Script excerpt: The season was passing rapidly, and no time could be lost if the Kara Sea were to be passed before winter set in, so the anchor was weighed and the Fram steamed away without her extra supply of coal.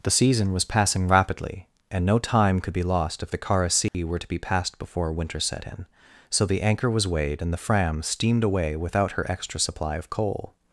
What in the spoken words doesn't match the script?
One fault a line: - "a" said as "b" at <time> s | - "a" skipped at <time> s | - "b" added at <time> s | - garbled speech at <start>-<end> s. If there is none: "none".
none